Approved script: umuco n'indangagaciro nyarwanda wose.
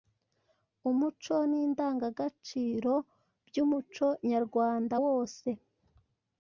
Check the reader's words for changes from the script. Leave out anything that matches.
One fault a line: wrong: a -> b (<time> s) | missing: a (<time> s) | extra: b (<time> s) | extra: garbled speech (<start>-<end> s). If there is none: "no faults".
extra: by'umuco (3.5 s)